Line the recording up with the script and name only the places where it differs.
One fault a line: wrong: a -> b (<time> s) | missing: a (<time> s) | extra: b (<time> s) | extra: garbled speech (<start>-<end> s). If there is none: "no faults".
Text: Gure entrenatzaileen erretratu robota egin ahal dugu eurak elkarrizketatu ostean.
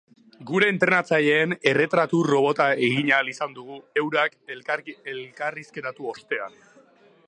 extra: izan (3.4 s)